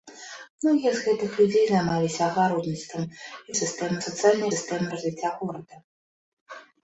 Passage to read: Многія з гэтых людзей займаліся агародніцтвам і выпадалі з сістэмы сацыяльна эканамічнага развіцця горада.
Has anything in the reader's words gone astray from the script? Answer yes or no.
yes